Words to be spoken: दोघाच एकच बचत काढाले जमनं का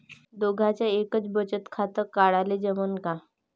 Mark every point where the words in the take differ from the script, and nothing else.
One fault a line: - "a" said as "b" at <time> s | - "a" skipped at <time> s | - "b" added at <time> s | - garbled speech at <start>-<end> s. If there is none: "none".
- "खातं" added at 1.7 s